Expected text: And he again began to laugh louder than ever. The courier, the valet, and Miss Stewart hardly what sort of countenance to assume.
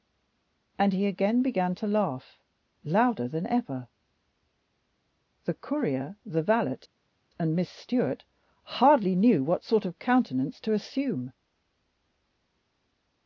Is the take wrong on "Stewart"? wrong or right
right